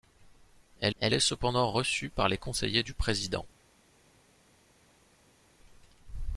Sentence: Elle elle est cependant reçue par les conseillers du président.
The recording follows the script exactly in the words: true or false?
true